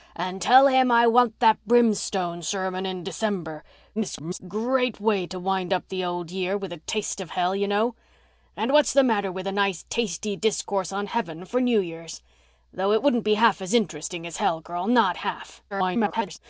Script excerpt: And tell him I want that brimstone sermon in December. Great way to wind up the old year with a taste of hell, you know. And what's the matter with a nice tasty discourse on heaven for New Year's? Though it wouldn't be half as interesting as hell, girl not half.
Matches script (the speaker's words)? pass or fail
fail